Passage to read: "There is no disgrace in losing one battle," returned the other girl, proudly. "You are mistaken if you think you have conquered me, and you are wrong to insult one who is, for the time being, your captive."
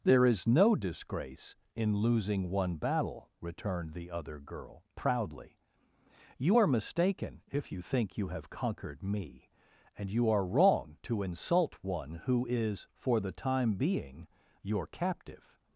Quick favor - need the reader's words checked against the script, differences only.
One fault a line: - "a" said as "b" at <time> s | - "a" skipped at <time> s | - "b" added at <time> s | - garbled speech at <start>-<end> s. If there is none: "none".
none